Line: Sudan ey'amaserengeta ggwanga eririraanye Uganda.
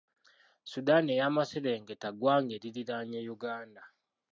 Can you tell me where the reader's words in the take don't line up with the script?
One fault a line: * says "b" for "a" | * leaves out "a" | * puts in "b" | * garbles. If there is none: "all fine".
all fine